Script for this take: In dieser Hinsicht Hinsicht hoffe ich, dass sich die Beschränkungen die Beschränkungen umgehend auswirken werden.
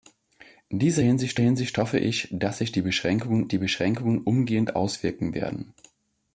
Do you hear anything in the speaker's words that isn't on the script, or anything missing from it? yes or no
no